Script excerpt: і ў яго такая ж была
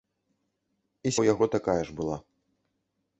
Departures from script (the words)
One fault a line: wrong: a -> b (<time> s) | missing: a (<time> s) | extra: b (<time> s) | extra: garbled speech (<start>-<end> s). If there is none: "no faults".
no faults